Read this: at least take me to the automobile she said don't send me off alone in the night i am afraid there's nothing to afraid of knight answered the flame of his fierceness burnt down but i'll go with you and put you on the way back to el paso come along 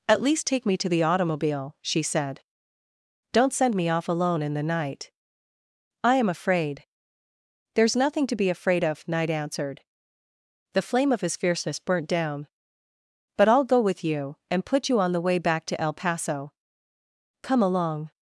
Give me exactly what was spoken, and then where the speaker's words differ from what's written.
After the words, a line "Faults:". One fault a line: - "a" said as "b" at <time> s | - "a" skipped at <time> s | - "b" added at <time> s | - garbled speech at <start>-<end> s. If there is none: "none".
at least take me to the automobile she said don't send me off alone in the night i am afraid there's nothing to be afraid of knight answered the flame of his fierceness burnt down but i'll go with you and put you on the way back to el paso come along
Faults:
- "be" added at 8.3 s